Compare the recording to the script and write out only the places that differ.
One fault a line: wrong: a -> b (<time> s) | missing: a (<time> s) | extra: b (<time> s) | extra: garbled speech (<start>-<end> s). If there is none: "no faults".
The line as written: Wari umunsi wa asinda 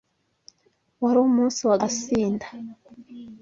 no faults